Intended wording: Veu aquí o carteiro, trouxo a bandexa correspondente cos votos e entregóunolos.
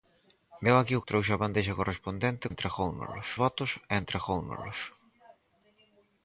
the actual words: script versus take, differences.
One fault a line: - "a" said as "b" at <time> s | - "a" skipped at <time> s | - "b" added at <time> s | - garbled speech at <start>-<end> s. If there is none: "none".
- "carteiro" skipped at 1.1 s
- "cos" said as "entregóunolos" at 2.5 s